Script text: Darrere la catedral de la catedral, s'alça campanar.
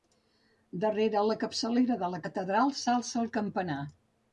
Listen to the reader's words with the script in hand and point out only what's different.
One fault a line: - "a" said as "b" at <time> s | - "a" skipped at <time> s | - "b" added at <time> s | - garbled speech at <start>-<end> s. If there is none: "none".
- "catedral" said as "capçalera" at 1.4 s
- "el" added at 3.3 s